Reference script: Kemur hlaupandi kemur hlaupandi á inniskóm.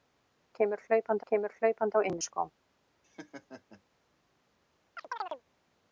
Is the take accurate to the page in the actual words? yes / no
yes